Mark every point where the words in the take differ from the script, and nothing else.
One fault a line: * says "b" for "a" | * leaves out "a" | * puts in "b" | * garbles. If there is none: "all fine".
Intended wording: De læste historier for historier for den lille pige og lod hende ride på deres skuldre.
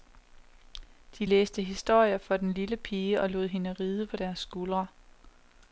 * leaves out "historier for"